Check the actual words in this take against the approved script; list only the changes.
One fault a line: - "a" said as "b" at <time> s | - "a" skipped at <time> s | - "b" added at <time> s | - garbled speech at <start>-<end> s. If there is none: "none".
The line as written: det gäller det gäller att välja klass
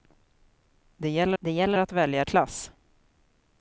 none